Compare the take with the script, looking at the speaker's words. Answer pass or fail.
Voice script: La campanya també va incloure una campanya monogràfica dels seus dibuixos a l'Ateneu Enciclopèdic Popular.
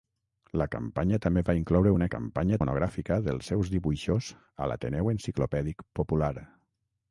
pass